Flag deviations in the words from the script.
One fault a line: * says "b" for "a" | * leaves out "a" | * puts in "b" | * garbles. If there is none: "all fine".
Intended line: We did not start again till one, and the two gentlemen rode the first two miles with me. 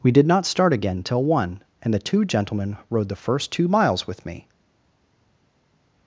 all fine